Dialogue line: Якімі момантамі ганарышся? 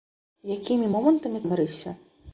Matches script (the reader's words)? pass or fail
pass